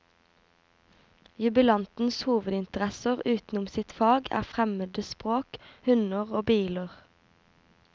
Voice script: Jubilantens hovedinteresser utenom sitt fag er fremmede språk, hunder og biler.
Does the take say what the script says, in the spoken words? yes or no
yes